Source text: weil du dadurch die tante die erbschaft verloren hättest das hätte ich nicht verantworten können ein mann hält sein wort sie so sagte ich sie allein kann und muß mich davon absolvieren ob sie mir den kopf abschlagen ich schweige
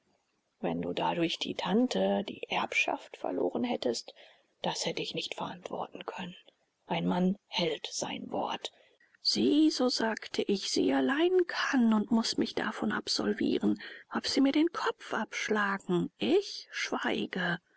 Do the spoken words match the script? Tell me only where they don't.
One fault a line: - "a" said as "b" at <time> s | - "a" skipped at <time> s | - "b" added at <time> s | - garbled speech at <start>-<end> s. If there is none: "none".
- "weil" said as "wenn" at 0.6 s